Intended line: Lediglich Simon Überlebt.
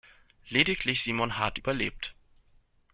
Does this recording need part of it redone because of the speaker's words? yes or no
yes